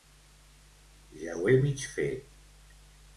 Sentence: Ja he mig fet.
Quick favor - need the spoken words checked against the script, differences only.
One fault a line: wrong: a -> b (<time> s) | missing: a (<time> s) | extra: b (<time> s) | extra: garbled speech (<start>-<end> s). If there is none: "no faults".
extra: ho (1.4 s)